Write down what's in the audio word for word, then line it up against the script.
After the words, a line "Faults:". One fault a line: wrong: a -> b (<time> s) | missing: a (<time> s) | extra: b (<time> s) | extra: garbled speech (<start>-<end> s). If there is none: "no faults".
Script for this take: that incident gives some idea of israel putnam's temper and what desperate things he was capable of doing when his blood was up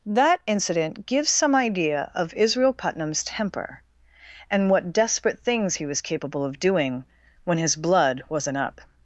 that incident gives some idea of israel putnam's temper and what desperate things he was capable of doing when his blood wasn't up
Faults:
wrong: was -> wasn't (8.3 s)